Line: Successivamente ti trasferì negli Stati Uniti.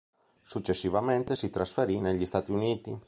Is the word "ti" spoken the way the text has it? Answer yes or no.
no